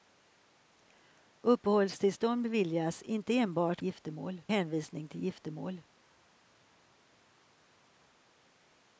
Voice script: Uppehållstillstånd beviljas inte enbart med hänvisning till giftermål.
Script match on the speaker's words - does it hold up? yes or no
no